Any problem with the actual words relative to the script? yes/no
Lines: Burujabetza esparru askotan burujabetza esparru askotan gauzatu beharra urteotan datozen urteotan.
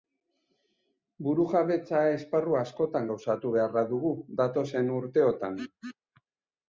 yes